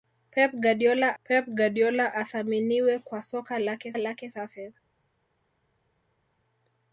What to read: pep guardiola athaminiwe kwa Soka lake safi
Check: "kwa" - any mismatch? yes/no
no